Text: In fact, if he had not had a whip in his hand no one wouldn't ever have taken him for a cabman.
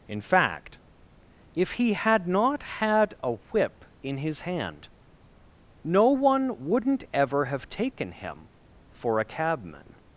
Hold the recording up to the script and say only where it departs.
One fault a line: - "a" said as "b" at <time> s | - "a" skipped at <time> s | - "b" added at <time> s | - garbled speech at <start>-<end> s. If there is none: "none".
none